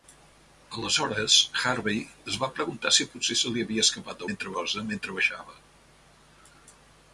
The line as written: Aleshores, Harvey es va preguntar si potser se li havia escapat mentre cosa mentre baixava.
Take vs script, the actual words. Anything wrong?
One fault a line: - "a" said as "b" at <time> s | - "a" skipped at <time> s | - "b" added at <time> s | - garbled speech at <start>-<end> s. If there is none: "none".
none